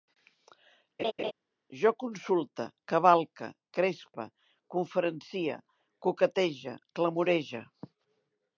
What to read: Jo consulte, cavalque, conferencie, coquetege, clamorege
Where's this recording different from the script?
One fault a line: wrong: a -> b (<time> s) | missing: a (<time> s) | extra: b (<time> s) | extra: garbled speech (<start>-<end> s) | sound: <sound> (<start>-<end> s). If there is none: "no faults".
sound: laugh (1.0-1.3 s)
extra: crespe (3.8 s)